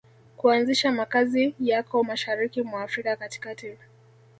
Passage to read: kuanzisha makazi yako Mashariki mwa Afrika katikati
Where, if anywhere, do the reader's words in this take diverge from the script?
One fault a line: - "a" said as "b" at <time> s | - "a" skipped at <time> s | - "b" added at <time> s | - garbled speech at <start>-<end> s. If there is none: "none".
none